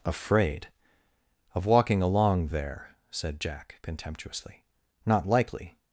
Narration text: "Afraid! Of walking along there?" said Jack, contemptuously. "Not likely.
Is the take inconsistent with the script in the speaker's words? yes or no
no